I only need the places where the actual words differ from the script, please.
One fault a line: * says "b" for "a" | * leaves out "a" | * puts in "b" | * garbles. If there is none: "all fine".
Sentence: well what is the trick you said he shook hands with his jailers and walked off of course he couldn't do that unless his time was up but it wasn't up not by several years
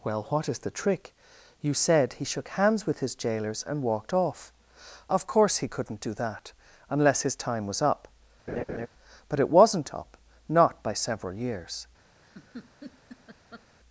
all fine